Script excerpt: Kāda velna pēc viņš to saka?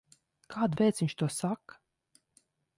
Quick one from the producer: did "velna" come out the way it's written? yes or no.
no